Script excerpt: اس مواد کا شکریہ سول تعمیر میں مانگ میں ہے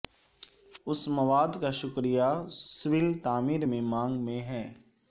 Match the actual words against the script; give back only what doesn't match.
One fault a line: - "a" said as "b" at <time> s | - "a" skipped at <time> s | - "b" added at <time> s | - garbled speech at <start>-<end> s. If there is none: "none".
none